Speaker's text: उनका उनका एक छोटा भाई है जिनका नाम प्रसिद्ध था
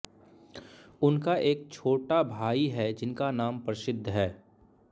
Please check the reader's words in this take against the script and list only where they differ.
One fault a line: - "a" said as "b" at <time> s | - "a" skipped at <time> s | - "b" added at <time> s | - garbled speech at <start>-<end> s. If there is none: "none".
- "उनका" skipped at 1.4 s
- "था" said as "है" at 4.1 s